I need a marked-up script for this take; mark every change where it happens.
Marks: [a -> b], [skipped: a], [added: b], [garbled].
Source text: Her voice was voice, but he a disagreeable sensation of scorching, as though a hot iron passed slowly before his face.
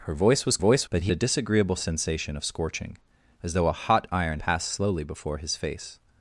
Her voice was voice, but he a disagreeable sensation of scorching, as though a hot iron passed slowly before his face.